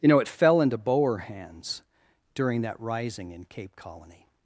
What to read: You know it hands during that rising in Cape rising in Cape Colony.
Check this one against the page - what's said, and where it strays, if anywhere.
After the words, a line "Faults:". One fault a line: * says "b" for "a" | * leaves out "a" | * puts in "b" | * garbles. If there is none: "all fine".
You know it fell into Boer hands during that rising in Cape Colony.
Faults:
* puts in "fell into Boer"
* leaves out "rising in Cape"